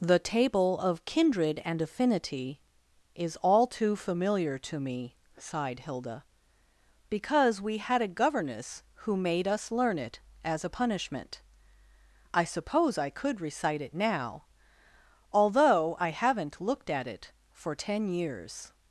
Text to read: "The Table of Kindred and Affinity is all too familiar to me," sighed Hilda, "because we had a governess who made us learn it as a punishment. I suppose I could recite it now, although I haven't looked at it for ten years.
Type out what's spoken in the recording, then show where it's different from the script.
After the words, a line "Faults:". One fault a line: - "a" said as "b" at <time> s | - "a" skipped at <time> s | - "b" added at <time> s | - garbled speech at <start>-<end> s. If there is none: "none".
"The Table of Kindred and Affinity is all too familiar to me," sighed Hilda, "because we had a governess who made us learn it as a punishment. I suppose I could recite it now, although I haven't looked at it for ten years.
Faults:
none